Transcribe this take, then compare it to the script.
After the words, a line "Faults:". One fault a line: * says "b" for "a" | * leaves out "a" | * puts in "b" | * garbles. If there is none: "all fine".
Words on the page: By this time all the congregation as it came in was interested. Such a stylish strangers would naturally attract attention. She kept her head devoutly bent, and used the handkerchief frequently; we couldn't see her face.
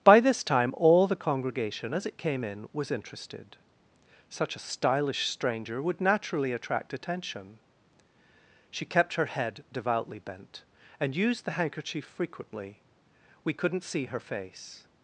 By this time all the congregation as it came in was interested. Such a stylish stranger would naturally attract attention. She kept her head devoutly bent, and used the handkerchief frequently; we couldn't see her face.
Faults:
* says "stranger" for "strangers"